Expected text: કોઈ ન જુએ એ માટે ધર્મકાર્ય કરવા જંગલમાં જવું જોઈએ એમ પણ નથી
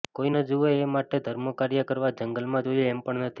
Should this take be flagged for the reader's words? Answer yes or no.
yes